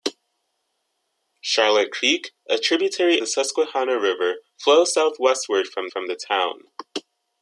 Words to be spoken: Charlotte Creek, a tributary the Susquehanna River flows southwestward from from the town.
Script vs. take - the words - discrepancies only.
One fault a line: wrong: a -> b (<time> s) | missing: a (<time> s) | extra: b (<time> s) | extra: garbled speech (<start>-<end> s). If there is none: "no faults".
no faults